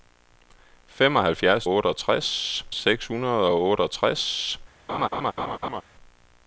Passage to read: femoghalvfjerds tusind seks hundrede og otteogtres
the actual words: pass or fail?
fail